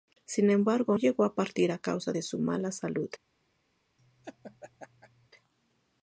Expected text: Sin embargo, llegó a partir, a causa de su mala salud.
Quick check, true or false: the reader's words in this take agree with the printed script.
true